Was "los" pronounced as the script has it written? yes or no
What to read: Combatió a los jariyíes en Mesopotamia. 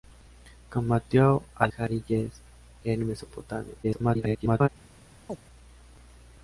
no